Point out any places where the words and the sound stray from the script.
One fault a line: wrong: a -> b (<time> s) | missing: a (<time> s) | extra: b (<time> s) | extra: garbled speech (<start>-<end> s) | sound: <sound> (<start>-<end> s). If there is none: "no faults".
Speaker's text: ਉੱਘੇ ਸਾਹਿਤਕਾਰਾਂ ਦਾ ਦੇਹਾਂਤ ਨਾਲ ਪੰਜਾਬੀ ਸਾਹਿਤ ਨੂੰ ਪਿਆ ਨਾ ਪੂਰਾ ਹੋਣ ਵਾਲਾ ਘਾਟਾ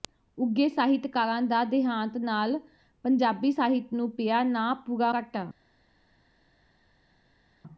missing: ਹੋਣ ਵਾਲਾ (5.1 s)